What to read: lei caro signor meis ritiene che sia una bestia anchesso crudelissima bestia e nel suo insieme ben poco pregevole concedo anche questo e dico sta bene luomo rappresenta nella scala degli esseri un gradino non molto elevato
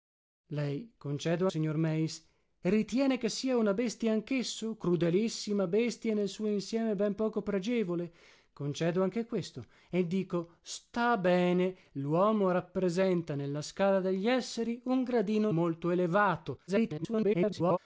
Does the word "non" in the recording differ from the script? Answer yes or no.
yes